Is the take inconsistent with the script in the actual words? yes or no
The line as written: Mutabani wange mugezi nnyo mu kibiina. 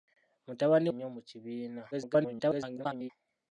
yes